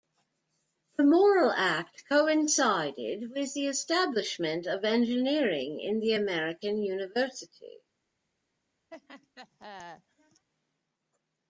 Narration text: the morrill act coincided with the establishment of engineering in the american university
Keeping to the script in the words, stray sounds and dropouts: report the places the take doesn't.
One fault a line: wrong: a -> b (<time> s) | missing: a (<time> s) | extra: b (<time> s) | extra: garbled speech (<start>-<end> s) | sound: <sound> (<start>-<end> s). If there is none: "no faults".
sound: laugh (8.9-10.5 s)